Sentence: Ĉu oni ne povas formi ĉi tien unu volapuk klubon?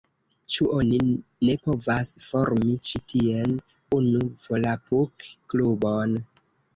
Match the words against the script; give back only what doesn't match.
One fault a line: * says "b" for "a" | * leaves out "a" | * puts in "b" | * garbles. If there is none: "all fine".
all fine